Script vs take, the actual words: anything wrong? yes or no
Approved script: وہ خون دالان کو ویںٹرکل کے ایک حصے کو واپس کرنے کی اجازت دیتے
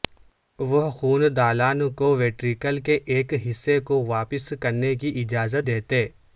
no